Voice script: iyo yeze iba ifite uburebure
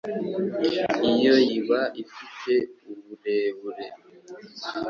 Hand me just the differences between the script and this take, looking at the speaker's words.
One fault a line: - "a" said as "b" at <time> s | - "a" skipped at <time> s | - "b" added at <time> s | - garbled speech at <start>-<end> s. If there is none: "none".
- "yeze" skipped at 1.4 s